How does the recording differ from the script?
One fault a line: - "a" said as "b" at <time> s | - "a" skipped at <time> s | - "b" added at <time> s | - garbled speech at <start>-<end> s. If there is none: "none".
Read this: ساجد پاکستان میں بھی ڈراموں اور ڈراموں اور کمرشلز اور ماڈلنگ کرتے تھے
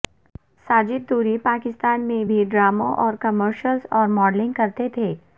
- "طوری" added at 1.1 s
- "ڈراموں اور" skipped at 3.1 s